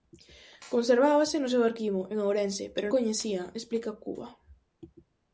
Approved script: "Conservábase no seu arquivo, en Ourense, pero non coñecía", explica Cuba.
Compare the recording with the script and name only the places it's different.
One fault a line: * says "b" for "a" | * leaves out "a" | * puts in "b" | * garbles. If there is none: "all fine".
* leaves out "non"